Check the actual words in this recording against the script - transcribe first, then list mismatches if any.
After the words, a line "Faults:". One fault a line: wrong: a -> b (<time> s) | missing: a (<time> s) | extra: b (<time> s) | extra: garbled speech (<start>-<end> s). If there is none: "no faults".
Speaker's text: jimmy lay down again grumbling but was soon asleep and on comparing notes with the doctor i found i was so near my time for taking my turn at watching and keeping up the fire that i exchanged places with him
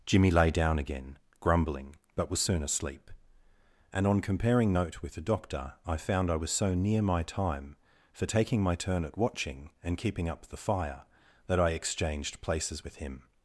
jimmy lay down again grumbling but was soon asleep and on comparing note with the doctor i found i was so near my time for taking my turn at watching and keeping up the fire that i exchanged places with him
Faults:
wrong: notes -> note (4.7 s)